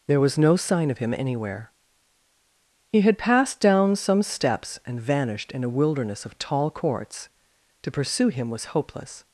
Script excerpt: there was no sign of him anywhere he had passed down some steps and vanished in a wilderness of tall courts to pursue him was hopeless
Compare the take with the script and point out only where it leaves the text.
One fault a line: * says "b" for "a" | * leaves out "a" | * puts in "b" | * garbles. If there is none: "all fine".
all fine